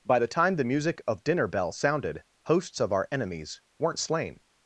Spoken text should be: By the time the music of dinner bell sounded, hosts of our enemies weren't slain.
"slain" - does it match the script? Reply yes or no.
yes